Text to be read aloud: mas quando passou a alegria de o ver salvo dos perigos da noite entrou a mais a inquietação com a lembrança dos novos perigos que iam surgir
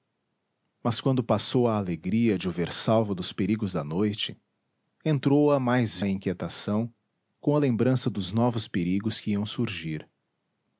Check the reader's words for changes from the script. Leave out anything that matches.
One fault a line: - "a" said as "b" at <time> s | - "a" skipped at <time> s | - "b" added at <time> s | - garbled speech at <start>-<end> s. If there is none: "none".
none